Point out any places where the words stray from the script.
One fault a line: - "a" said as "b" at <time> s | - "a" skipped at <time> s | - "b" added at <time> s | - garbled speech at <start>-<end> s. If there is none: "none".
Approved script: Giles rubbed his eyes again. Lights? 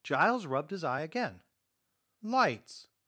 - "eyes" said as "eye" at 0.8 s